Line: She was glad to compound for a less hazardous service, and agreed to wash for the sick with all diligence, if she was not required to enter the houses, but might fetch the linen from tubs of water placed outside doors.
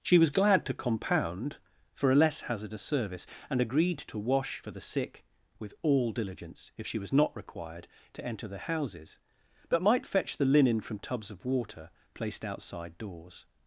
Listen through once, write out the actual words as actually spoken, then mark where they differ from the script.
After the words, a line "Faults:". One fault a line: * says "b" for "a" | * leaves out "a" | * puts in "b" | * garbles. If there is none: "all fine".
She was glad to compound for a less hazardous service, and agreed to wash for the sick with all diligence, if she was not required to enter the houses, but might fetch the linen from tubs of water placed outside doors.
Faults:
all fine